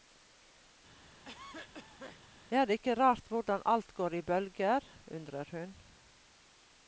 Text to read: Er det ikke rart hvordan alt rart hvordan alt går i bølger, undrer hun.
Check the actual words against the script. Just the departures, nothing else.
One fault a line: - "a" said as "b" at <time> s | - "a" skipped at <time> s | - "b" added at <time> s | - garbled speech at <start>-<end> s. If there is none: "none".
- "rart hvordan alt" skipped at 3.9 s